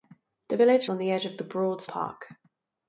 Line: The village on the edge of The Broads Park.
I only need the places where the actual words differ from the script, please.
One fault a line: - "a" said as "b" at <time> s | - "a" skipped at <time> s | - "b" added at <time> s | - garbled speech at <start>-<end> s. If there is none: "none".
none